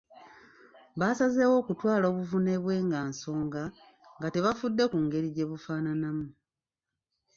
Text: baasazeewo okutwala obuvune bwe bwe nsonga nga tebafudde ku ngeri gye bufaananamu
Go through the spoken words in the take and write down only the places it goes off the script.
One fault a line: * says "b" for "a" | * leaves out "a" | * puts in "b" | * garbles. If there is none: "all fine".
* says "nga" for "bwe"